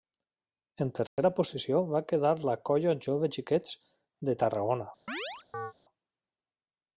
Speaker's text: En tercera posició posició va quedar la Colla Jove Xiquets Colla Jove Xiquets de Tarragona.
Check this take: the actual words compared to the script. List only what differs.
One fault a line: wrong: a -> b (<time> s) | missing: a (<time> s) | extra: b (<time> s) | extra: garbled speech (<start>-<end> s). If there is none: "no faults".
missing: posició (1.8 s)
missing: Colla Jove Xiquets (3.8 s)